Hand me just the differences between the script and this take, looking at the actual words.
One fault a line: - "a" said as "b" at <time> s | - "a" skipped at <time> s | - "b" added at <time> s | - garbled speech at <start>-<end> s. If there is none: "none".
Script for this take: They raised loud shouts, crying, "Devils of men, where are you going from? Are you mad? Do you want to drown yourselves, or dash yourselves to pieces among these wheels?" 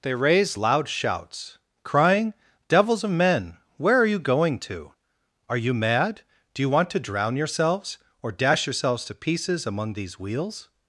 - "from" said as "to" at 4.6 s